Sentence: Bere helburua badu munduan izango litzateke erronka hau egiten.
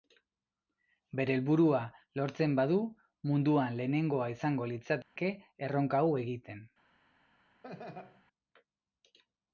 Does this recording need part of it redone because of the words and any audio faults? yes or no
yes